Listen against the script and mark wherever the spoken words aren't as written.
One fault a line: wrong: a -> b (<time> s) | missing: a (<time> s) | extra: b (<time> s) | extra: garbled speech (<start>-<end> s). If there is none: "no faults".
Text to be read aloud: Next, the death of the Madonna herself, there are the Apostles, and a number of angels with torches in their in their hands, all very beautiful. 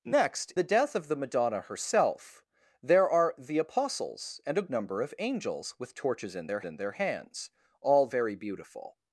no faults